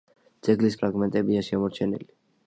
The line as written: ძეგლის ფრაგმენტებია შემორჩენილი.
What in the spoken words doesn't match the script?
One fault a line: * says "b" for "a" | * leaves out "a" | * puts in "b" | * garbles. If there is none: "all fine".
all fine